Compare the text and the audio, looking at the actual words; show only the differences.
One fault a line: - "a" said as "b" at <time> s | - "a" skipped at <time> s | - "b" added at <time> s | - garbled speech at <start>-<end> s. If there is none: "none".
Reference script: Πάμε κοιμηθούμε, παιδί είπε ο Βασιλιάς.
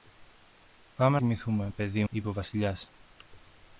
none